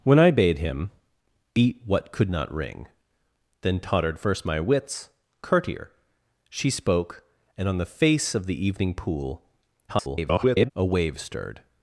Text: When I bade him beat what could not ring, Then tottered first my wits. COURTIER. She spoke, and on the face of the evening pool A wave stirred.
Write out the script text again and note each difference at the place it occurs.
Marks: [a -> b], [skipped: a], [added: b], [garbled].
When I bade him beat what could not ring, Then tottered first my wits. COURTIER. She spoke, and on the face of the evening pool [garbled] A wave stirred.